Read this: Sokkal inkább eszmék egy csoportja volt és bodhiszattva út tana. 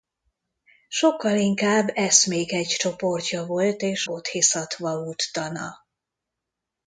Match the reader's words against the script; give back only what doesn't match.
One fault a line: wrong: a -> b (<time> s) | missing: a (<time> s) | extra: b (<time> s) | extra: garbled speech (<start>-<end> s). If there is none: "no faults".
no faults